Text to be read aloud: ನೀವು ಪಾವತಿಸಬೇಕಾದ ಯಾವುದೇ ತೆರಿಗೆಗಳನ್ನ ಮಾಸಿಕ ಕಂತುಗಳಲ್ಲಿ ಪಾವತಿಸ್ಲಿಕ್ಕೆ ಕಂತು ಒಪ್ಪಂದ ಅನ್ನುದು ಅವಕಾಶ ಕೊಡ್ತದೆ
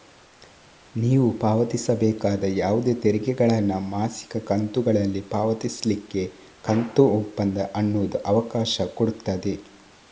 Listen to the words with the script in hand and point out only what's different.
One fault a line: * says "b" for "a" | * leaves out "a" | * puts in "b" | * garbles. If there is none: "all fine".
all fine